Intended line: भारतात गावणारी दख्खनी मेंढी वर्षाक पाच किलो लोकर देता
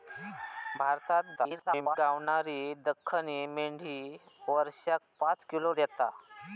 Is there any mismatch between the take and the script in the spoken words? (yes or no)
yes